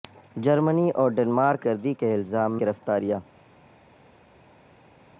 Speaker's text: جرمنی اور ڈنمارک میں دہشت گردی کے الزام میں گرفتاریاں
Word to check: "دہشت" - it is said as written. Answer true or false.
false